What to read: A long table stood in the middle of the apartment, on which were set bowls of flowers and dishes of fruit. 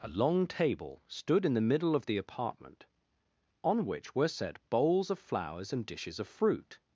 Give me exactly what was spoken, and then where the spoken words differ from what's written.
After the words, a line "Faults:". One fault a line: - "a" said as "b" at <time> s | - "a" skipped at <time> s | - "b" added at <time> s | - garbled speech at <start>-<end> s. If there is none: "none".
A long table stood in the middle of the apartment, on which were set bowls of flowers and dishes of fruit.
Faults:
none